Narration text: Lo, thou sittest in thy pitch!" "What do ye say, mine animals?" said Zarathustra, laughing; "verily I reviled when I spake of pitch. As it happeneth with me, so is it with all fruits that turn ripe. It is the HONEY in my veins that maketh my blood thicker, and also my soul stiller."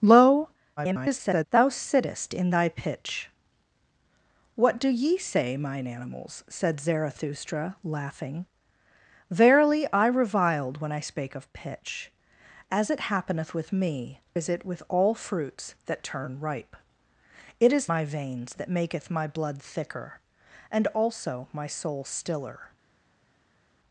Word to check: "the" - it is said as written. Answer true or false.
false